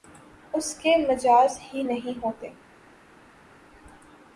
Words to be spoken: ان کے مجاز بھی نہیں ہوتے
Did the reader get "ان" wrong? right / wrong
wrong